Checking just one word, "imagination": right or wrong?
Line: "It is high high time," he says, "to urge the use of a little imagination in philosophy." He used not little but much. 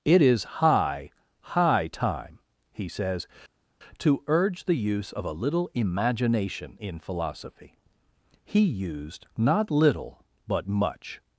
right